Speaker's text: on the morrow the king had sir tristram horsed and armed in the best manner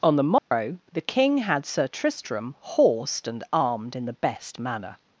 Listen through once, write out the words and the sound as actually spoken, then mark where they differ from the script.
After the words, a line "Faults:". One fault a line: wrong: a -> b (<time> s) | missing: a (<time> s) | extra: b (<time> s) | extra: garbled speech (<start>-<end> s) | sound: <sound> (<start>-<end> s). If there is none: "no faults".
on the morrow the king had sir tristram horsed and armed in the best manner
Faults:
sound: dropout (0.4-0.5 s)